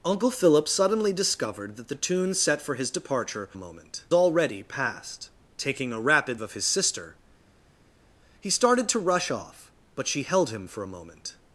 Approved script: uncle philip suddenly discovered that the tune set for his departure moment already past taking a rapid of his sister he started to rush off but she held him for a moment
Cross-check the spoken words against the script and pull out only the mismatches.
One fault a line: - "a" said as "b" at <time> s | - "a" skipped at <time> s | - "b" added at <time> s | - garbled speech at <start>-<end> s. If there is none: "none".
none